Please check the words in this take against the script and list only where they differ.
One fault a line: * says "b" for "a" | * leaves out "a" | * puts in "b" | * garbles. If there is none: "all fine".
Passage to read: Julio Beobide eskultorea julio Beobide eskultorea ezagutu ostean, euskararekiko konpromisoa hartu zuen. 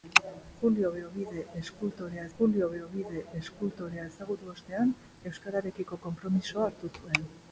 all fine